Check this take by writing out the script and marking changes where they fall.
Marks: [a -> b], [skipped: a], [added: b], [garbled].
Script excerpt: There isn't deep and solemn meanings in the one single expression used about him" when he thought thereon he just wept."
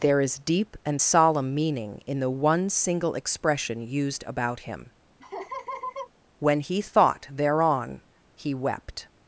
There [isn't -> is] deep and solemn [meanings -> meaning] in the one single expression used about him" when he thought thereon he [skipped: just] wept."